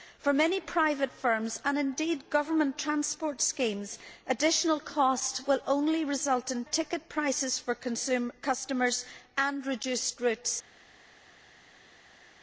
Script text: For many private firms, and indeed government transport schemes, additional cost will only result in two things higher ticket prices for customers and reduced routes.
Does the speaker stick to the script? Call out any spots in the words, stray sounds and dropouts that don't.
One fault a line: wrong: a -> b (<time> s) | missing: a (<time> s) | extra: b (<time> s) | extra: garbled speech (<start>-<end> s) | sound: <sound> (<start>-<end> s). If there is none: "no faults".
missing: two things higher (6.7 s)